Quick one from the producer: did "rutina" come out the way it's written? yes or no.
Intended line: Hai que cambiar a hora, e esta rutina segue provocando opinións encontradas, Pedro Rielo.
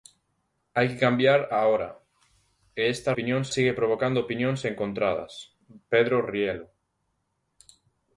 no